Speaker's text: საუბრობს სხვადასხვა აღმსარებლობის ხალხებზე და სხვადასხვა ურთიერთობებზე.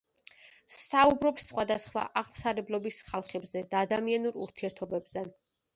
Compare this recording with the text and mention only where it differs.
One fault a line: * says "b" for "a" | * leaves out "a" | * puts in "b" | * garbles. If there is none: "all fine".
* says "ადამიანურ" for "სხვადასხვა"